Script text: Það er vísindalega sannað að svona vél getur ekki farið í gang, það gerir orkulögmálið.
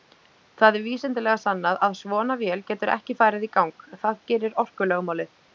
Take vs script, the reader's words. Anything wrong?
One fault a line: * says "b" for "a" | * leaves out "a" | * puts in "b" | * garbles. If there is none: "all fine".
all fine